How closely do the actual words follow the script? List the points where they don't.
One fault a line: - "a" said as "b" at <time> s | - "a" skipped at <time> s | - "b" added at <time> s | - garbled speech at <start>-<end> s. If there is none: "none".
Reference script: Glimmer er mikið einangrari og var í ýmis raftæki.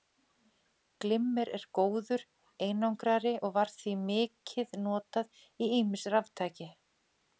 - "mikið" said as "góður" at 1.8 s
- "því mikið notað" added at 3.8 s